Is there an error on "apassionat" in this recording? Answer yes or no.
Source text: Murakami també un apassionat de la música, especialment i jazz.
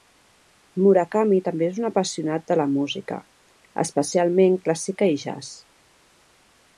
no